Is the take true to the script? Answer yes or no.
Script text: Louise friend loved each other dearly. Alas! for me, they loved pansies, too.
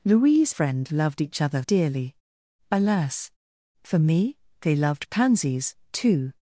yes